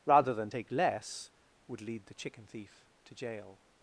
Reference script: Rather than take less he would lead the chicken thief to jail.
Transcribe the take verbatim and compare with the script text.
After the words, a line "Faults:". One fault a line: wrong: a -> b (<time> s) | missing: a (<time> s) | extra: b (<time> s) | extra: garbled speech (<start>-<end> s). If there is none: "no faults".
Rather than take less would lead the chicken thief to jail.
Faults:
missing: he (1.3 s)